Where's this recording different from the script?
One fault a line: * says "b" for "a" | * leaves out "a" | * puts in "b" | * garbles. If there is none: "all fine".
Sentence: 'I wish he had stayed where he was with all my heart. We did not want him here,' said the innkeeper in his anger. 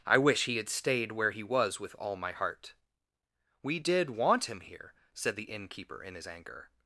* leaves out "not"